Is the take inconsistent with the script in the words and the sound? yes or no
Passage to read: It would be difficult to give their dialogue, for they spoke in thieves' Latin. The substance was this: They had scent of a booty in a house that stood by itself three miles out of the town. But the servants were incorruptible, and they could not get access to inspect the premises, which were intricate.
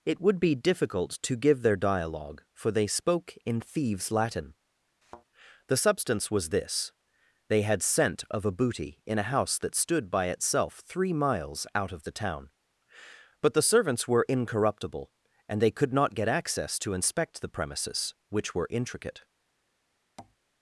yes